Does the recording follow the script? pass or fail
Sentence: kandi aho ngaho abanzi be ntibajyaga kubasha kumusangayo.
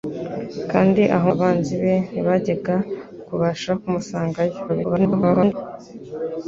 fail